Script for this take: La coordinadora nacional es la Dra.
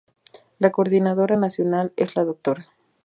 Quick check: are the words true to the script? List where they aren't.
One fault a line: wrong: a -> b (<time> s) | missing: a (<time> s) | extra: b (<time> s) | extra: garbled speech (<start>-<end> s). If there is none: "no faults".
no faults